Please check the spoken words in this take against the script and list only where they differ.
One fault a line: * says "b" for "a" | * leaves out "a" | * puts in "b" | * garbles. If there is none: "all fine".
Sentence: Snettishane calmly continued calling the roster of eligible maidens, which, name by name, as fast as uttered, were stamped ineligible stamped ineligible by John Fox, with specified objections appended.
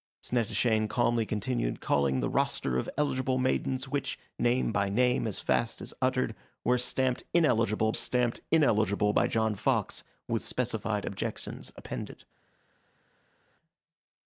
all fine